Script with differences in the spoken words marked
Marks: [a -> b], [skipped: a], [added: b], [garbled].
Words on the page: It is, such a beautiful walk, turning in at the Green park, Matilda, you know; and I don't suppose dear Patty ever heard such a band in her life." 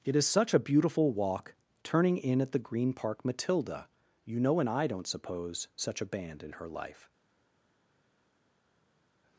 It is, such a beautiful walk, turning in at the Green park, Matilda, you know; and I don't suppose [skipped: dear Patty ever heard] such a band in her life."